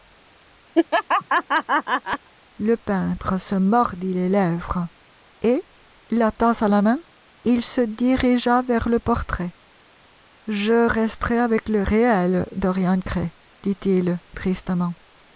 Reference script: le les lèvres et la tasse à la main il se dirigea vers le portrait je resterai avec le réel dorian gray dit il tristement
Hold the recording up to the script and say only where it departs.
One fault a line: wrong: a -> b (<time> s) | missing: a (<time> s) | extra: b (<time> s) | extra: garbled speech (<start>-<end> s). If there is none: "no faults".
extra: peintre se mordit (2.7 s)